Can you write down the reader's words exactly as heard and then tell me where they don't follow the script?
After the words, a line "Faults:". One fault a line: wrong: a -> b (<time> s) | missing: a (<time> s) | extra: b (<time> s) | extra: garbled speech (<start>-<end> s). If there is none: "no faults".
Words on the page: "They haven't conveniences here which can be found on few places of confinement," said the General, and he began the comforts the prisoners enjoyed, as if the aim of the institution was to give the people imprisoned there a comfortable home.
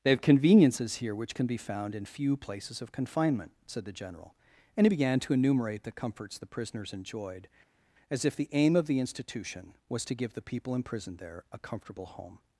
"They have conveniences here which can be found in few places of confinement," said the General, and he began to enumerate the comforts the prisoners enjoyed, as if the aim of the institution was to give the people imprisoned there a comfortable home.
Faults:
wrong: haven't -> have (0.1 s)
wrong: on -> in (1.9 s)
extra: to enumerate (5.2 s)